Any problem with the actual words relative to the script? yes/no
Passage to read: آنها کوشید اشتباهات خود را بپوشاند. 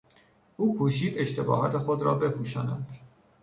yes